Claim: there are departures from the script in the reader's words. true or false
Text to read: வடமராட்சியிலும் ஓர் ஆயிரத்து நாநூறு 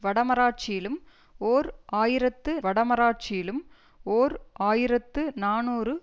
true